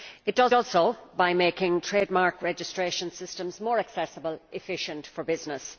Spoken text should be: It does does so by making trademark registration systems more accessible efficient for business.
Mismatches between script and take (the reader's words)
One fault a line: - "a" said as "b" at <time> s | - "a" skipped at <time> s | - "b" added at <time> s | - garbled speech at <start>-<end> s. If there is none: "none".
none